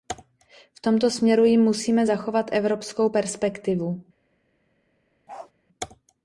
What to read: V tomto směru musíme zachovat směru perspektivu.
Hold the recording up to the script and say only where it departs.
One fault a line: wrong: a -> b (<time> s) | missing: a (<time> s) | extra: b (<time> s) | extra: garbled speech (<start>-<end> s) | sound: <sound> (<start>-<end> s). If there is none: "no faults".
extra: jim (1.4 s)
wrong: směru -> evropskou (2.5 s)
sound: bark (5.3-5.5 s)